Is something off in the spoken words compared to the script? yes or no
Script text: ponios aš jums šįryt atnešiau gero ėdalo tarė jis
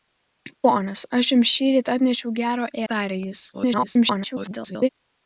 yes